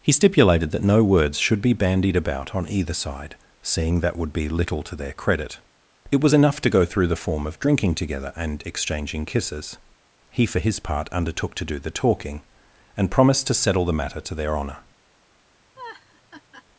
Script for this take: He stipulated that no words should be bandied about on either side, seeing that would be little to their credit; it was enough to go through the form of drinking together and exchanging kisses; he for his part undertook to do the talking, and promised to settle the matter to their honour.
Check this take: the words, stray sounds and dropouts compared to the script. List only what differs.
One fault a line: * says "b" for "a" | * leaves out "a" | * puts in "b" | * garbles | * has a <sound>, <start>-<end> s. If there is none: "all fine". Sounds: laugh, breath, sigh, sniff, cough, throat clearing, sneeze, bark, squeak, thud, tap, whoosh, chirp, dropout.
* has a laugh, 15.8-16.7 s